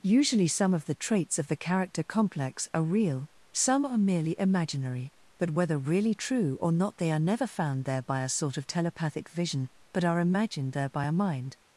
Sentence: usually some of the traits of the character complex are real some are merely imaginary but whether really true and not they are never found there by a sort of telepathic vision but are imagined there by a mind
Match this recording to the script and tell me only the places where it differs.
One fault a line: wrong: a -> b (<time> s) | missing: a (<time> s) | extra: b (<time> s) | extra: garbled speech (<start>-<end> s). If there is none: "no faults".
wrong: and -> or (6.6 s)